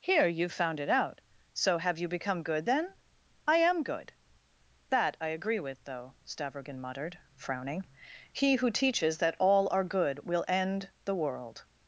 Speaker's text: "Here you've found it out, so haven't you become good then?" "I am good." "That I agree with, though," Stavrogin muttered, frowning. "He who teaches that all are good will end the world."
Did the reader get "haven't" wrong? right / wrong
wrong